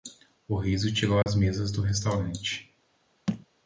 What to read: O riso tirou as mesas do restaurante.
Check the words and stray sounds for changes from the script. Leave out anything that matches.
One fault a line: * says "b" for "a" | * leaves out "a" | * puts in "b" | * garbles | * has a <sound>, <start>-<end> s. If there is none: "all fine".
* has a dropout, 1.2-1.3 s
* has a thud, 3.3-3.5 s